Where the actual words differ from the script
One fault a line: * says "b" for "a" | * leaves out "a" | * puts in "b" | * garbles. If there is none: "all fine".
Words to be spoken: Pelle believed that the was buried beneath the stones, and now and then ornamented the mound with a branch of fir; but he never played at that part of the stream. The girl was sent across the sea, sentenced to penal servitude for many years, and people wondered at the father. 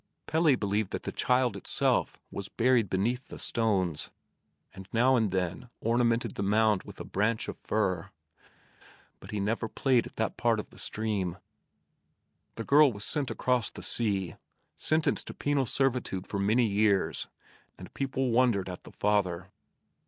* puts in "child itself"